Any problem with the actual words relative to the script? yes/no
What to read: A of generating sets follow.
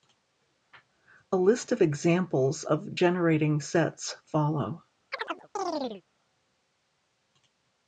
yes